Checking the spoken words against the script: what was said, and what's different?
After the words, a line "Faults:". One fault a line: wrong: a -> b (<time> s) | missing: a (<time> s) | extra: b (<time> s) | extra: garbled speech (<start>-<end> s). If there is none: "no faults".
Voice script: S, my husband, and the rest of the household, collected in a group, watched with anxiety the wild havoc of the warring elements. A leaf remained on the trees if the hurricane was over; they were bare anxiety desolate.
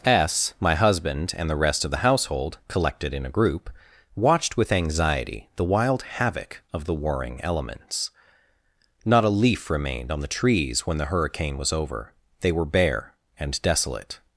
S, my husband, and the rest of the household, collected in a group, watched with anxiety the wild havoc of the warring elements. Not a leaf remained on the trees when the hurricane was over; they were bare and desolate.
Faults:
extra: Not (9.1 s)
wrong: if -> when (10.9 s)
wrong: anxiety -> and (13.4 s)